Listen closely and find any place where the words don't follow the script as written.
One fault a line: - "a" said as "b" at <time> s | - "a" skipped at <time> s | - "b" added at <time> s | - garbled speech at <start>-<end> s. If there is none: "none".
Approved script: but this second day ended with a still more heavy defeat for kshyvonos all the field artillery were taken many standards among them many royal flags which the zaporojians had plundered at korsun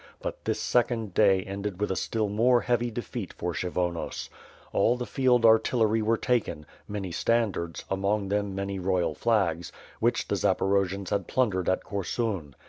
none